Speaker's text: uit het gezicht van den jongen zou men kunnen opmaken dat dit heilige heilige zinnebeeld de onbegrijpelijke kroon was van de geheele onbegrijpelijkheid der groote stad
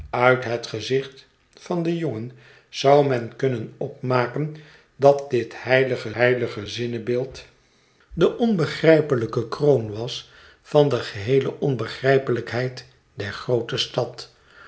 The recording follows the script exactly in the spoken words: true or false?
true